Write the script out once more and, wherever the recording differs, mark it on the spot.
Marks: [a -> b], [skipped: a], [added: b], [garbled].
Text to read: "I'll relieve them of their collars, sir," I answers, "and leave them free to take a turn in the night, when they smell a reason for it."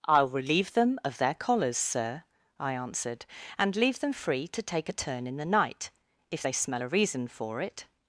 "I'll relieve them of their collars, sir," I [answers, -> answered] "and leave them free to take a turn in the night, [when -> if] they smell a reason for it."